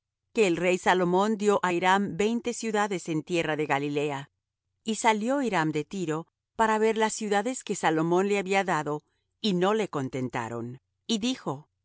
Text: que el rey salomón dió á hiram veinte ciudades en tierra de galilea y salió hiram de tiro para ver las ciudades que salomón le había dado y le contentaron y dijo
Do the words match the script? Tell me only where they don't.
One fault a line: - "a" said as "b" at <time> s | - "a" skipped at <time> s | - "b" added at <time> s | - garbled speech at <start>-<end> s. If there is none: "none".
- "no" added at 9.5 s